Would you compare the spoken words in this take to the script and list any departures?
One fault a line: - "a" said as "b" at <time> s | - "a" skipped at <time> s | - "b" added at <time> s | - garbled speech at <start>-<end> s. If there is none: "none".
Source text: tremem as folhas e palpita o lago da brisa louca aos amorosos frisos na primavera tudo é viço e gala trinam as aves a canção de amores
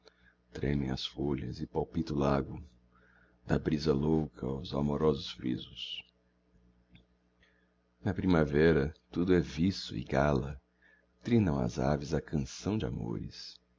none